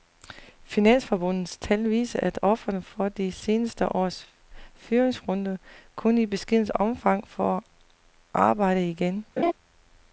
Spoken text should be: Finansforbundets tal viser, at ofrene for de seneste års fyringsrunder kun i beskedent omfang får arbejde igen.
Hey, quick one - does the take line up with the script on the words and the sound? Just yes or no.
no